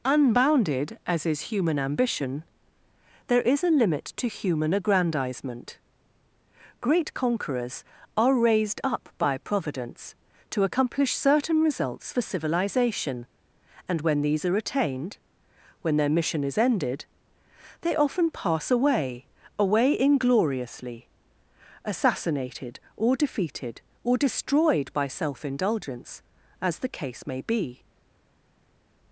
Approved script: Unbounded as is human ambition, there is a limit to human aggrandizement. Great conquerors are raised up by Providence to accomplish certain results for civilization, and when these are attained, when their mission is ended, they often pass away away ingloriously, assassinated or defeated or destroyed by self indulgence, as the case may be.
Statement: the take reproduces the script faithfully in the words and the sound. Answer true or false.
true